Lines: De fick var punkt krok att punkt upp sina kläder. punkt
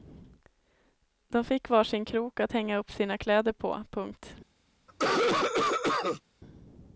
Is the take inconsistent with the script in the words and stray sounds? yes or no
yes